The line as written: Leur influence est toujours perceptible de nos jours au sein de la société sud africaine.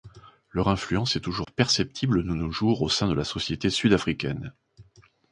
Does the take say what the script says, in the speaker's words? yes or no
yes